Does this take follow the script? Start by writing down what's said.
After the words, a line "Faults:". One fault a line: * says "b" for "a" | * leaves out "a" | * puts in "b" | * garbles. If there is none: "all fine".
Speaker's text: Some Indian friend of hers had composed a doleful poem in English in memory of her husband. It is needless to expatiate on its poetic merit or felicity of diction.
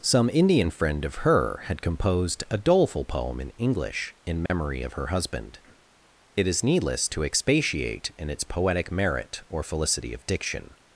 Some Indian friend of her had composed a doleful poem in English in memory of her husband. It is needless to expatiate in its poetic merit or felicity of diction.
Faults:
* says "her" for "hers"
* says "in" for "on"